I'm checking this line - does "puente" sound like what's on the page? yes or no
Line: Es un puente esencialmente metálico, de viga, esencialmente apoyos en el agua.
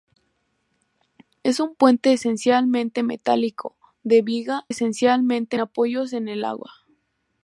yes